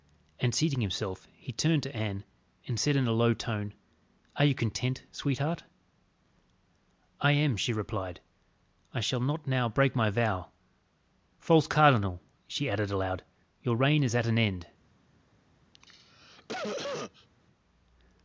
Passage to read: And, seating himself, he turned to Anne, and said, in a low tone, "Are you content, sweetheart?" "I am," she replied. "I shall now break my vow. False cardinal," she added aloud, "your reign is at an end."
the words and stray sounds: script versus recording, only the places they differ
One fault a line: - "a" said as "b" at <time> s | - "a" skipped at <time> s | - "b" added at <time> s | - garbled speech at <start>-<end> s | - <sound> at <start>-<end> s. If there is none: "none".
- "not" added at 9.2 s
- cough at 15.7-17.3 s